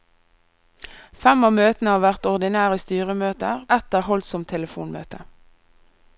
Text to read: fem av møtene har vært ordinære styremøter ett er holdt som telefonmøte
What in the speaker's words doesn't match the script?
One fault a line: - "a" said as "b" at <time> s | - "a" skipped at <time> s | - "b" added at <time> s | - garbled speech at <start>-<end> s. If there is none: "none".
none